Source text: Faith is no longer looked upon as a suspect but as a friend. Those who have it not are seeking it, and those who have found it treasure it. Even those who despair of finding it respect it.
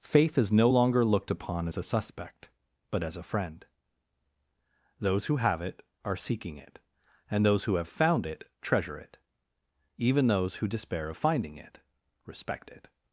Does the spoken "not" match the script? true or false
false